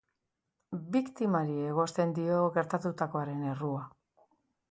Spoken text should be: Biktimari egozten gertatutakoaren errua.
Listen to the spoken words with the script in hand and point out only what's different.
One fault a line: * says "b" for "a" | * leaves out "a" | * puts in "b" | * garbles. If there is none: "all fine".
* puts in "dio"